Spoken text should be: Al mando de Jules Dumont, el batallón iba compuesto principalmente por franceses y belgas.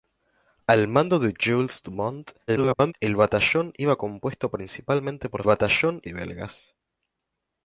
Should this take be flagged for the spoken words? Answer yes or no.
yes